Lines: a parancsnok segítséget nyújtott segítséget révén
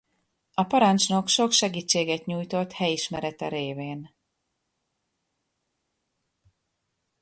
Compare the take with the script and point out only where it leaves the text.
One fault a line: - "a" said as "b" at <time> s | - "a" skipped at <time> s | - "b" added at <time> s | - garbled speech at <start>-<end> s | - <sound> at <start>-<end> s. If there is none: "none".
- "sok" added at 1.3 s
- "segítséget" said as "helyismerete" at 2.7 s